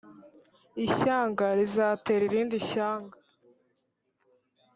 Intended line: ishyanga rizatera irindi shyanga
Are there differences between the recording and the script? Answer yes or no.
no